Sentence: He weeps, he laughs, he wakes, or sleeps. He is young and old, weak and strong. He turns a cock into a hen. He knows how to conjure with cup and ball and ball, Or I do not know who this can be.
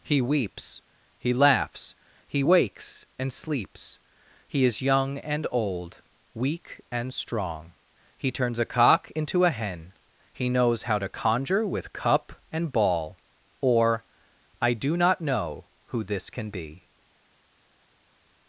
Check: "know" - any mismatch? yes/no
no